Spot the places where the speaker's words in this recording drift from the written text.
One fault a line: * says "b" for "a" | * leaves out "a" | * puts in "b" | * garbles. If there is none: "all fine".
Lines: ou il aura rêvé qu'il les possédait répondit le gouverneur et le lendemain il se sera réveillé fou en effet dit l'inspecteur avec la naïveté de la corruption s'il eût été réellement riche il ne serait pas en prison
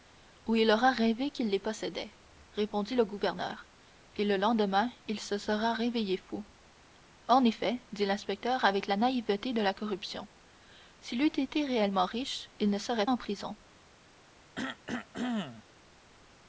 * leaves out "pas"